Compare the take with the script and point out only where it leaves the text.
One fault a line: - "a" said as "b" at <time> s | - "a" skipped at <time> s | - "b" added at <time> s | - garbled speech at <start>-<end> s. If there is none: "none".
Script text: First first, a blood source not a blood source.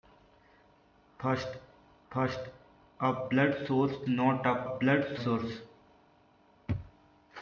none